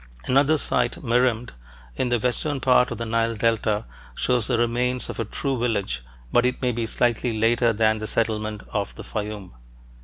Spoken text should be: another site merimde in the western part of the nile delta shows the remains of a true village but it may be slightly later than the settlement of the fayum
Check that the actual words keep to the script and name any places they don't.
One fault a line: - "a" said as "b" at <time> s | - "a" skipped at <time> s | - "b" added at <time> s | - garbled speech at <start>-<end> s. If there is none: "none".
none